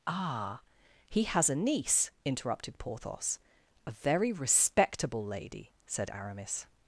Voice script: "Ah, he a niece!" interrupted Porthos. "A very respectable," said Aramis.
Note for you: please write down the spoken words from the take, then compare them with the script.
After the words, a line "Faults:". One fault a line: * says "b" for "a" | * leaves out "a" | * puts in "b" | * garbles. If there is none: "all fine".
"Ah, he has a niece!" interrupted Porthos. "A very respectable lady," said Aramis.
Faults:
* puts in "has"
* puts in "lady"